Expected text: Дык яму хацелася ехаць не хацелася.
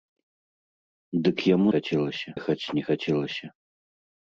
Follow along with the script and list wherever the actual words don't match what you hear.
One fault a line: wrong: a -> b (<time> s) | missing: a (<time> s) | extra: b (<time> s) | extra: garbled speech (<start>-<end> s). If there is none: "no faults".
no faults